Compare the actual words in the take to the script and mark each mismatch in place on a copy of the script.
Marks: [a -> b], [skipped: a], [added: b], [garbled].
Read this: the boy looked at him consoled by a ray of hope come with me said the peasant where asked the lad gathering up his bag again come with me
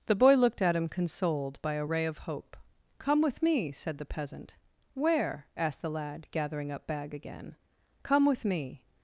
the boy looked at him consoled by a ray of hope come with me said the peasant where asked the lad gathering up [skipped: his] bag again come with me